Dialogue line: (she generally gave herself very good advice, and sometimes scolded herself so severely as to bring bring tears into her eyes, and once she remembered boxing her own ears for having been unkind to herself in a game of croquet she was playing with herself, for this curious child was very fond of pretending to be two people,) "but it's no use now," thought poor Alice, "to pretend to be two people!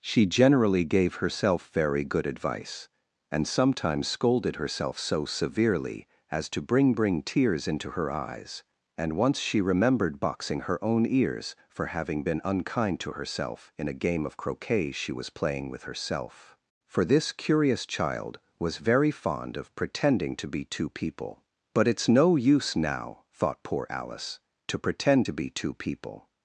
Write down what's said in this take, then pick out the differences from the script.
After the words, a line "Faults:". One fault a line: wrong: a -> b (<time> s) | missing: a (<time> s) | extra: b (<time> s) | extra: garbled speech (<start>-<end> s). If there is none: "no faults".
(she generally gave herself very good advice, and sometimes scolded herself so severely as to bring bring tears into her eyes, and once she remembered boxing her own ears for having been unkind to herself in a game of croquet she was playing with herself, for this curious child was very fond of pretending to be two people,) "but it's no use now," thought poor Alice, "to pretend to be two people!
Faults:
no faults